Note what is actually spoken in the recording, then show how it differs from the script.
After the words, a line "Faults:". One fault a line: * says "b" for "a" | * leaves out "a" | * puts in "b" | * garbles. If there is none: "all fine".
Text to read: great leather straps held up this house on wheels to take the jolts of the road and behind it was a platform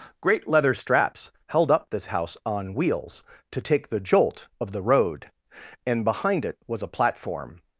great leather straps held up this house on wheels to take the jolt of the road and behind it was a platform
Faults:
* says "jolt" for "jolts"